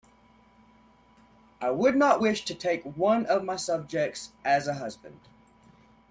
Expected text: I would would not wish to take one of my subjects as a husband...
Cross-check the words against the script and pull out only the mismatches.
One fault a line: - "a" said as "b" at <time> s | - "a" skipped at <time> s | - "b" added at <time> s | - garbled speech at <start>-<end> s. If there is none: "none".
- "would" skipped at 1.9 s